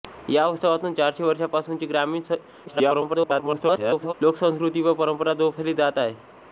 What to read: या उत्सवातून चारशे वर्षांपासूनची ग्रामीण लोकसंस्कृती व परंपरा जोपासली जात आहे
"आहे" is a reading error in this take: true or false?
false